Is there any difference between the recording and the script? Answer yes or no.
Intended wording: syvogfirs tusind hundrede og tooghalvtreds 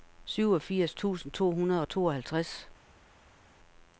yes